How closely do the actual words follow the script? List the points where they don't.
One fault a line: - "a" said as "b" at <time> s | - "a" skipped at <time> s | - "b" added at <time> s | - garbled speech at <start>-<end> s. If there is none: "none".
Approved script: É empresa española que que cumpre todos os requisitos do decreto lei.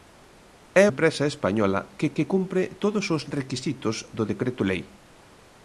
none